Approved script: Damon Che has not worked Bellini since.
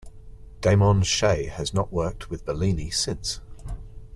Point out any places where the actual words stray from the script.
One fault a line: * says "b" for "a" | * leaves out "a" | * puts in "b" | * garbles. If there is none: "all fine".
* puts in "with"